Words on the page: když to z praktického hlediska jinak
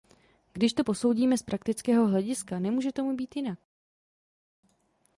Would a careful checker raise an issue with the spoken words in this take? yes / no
yes